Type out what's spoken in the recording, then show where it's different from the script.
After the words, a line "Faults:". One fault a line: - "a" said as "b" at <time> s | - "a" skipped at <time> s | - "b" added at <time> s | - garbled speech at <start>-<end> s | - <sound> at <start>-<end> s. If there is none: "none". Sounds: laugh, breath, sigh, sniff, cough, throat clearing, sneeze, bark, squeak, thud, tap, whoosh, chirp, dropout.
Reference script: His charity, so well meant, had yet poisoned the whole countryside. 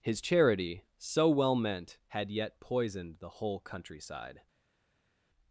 His charity, so well meant, had yet poisoned the whole countryside.
Faults:
none